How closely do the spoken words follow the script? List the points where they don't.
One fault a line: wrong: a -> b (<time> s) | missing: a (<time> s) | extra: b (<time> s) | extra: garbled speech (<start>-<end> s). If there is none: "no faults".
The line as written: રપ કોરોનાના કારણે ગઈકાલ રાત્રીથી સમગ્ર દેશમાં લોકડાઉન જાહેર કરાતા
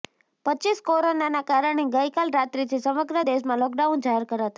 no faults